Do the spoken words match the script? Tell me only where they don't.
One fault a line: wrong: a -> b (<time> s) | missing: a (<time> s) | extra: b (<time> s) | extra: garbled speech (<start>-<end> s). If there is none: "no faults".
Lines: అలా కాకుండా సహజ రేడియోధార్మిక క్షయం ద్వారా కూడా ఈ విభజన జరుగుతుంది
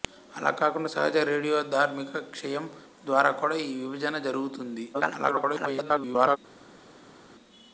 extra: garbled speech (4.9-6.4 s)